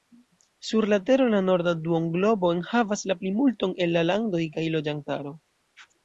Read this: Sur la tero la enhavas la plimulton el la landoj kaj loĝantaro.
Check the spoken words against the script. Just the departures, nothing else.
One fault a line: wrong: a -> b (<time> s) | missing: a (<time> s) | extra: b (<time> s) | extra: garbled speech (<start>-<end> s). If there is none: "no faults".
extra: norda duonglobo (1.5 s)